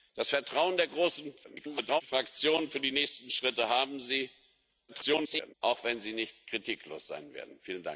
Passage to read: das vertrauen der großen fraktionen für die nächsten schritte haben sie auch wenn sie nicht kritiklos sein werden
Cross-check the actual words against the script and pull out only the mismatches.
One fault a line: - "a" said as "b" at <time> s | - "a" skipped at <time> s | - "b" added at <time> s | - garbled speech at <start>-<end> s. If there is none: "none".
- garbled speech at 1.4-2.0 s
- garbled speech at 4.9-5.5 s